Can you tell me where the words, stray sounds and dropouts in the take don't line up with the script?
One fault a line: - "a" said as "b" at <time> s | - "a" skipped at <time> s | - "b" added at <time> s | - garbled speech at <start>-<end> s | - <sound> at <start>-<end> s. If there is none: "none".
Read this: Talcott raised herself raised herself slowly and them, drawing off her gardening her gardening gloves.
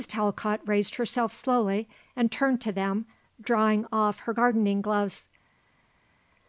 - "raised herself slowly and" said as "slowly and turned to" at 1.3 s
- "her gardening" skipped at 4.8 s